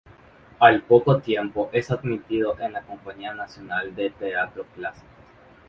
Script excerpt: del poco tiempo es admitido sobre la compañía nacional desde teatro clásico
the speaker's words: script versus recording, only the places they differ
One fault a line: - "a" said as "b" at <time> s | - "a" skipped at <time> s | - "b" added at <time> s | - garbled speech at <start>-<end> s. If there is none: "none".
- "del" said as "al" at 0.6 s
- "sobre" said as "en" at 2.6 s
- "desde" said as "de" at 3.9 s